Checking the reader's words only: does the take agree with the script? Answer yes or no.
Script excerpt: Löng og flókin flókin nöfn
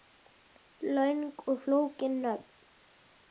no